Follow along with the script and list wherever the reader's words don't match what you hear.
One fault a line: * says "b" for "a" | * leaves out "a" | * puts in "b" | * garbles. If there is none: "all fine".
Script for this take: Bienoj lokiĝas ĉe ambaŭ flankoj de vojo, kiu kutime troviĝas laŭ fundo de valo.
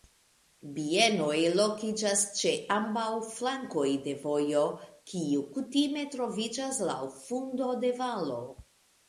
all fine